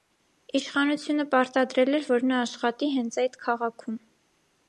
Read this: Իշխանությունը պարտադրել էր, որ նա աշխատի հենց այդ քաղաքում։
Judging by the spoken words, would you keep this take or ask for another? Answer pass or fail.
pass